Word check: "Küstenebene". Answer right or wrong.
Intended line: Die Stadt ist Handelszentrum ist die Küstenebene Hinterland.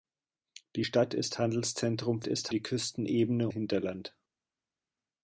right